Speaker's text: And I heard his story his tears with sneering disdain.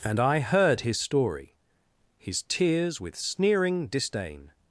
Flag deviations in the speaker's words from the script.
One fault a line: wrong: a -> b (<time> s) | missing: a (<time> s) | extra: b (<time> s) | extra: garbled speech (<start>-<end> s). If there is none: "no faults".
no faults